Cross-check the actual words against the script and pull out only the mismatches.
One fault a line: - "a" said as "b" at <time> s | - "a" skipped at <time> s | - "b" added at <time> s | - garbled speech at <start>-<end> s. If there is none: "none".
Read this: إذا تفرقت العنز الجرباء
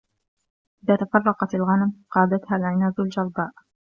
- "الغنم قادتها" added at 1.5 s